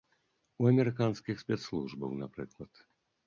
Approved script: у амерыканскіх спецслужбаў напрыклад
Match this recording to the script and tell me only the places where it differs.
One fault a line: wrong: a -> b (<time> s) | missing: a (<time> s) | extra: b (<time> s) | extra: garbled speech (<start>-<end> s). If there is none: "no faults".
no faults